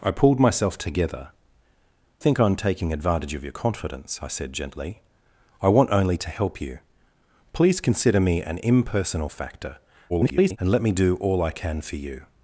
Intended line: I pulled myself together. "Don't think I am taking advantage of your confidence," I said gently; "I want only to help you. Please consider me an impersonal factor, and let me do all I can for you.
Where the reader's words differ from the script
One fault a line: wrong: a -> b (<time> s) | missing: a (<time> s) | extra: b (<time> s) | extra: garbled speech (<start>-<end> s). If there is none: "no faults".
missing: Don't (1.3 s)
extra: garbled speech (10.1-10.6 s)